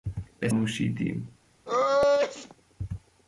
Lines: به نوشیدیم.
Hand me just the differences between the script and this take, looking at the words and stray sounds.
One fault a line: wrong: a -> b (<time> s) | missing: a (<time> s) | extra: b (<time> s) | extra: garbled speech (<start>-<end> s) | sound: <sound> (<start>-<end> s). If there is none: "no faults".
sound: sneeze (1.7-2.5 s)